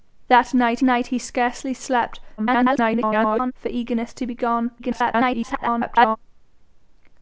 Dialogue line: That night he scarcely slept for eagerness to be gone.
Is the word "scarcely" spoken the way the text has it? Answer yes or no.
yes